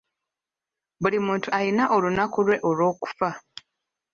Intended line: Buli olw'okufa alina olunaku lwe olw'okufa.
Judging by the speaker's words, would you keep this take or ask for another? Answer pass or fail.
fail